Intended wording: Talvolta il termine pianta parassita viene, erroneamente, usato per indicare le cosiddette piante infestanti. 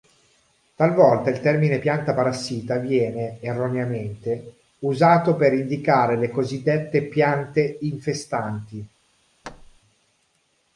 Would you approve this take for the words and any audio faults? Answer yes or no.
no